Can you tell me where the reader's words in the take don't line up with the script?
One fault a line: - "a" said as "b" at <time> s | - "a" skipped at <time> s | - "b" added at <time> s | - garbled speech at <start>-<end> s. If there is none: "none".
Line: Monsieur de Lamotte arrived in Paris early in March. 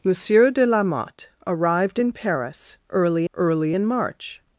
- "early" added at 3.3 s